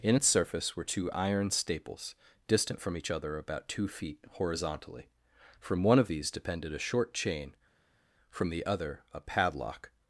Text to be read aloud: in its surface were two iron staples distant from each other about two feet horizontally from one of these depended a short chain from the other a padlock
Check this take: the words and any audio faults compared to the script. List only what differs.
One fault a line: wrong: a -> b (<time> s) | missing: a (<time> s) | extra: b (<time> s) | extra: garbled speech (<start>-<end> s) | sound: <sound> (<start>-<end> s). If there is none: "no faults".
no faults